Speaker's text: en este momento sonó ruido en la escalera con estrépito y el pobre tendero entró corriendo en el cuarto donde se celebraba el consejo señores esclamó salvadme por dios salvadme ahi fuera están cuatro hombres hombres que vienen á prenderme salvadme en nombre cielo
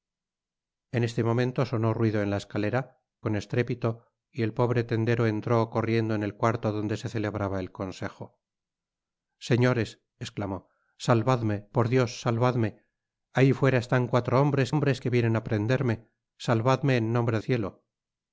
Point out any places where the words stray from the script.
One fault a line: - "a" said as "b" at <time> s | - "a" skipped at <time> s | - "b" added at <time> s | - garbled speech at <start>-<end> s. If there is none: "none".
none